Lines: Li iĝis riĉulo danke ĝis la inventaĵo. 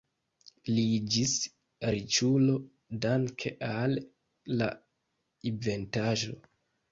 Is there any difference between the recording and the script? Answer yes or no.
yes